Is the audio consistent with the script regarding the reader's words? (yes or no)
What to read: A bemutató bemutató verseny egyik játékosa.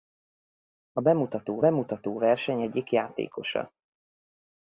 yes